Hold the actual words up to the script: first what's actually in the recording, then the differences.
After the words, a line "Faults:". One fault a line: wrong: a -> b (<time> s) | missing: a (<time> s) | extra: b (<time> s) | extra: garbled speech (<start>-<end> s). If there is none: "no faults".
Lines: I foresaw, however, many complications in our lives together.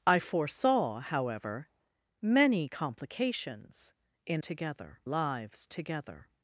I foresaw, however, many complications in together lives together.
Faults:
wrong: our -> together (4.4 s)